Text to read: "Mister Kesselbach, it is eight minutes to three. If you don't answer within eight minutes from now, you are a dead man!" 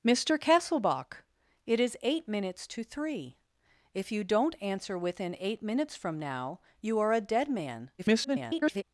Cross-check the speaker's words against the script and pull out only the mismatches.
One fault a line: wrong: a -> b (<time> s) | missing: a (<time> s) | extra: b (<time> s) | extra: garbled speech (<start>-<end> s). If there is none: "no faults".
extra: garbled speech (8.0-8.8 s)